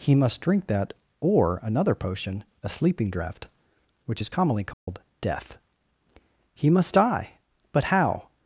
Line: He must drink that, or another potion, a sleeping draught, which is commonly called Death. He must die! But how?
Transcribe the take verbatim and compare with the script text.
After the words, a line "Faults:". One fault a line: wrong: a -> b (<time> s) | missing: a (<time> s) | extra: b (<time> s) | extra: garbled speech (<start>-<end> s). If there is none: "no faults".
He must drink that, or another potion, a sleeping draught, which is commonly called Death. He must die! But how?
Faults:
no faults